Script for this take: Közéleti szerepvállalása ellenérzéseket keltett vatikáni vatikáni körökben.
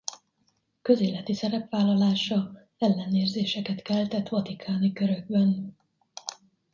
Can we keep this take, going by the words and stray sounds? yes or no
no